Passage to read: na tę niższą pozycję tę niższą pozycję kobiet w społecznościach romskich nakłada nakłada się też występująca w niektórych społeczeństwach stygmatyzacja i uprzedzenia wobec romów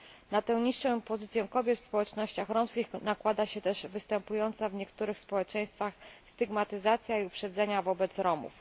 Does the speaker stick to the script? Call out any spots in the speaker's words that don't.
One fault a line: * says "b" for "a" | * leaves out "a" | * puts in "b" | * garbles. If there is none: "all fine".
* leaves out "tę niższą pozycję"
* leaves out "nakłada"